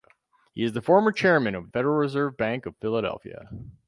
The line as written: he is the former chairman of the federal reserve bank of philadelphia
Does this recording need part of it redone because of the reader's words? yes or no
yes